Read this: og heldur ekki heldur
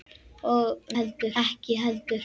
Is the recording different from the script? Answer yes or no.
no